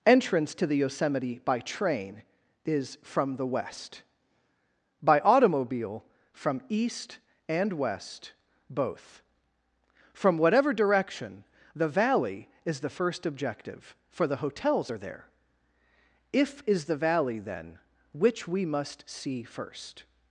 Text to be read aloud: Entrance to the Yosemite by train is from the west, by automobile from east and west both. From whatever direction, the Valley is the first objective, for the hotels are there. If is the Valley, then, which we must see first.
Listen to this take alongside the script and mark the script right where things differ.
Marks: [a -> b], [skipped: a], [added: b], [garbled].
Entrance to the Yosemite by train is from the west, by automobile from east and west both. From whatever direction, the Valley is the first objective, for the hotels are there. If is the Valley, then, which we must see first.